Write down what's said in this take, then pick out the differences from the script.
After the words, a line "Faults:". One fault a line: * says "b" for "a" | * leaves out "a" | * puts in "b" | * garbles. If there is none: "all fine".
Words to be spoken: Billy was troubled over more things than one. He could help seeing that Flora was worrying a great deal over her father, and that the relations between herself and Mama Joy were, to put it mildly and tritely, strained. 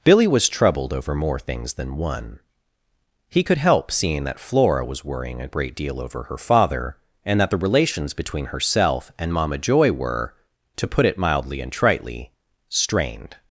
Billy was troubled over more things than one. He could help seeing that Flora was worrying a great deal over her father, and that the relations between herself and Mama Joy were, to put it mildly and tritely, strained.
Faults:
all fine